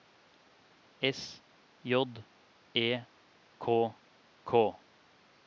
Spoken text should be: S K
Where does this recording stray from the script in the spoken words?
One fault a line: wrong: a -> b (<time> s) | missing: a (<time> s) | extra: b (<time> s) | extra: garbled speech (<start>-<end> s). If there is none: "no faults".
extra: J E K (1.8 s)